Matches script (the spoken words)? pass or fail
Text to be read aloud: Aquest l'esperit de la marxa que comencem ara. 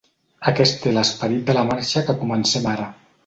pass